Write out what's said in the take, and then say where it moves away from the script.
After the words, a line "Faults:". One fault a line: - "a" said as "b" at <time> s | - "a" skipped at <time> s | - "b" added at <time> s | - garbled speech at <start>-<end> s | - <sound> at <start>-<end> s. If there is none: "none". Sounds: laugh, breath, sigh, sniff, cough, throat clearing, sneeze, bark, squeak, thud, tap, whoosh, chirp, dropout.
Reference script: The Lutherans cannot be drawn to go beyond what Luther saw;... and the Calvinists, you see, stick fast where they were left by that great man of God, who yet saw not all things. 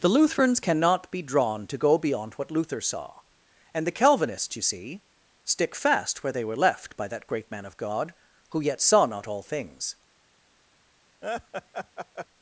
The Lutherans cannot be drawn to go beyond what Luther saw;... and the Calvinists, you see, stick fast where they were left by that great man of God, who yet saw not all things.
Faults:
- laugh at 11.2-12.3 s